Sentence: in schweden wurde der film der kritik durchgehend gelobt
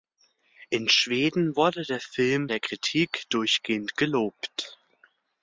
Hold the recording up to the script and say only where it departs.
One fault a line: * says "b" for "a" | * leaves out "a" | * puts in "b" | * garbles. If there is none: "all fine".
all fine